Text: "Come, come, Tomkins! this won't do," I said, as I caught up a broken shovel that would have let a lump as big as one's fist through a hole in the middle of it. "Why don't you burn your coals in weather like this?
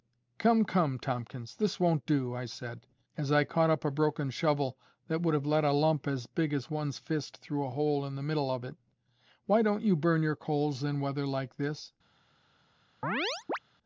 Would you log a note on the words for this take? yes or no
no